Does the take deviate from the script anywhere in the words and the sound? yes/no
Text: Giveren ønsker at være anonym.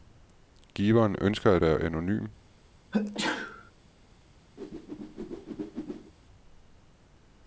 yes